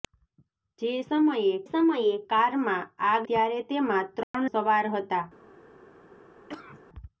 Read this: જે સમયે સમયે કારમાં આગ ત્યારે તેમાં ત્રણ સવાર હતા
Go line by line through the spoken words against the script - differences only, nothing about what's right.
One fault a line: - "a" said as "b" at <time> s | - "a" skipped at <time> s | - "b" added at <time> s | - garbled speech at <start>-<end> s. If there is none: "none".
none